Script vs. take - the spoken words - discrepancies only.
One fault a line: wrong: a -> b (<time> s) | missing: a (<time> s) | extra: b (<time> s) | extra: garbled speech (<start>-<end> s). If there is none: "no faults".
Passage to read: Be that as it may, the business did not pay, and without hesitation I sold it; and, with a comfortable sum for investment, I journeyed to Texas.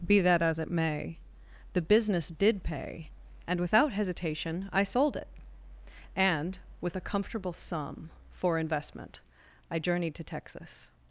missing: not (2.6 s)